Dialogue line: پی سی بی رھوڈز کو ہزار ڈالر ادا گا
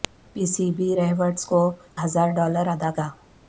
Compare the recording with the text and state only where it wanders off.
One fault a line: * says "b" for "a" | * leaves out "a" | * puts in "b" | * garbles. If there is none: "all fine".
all fine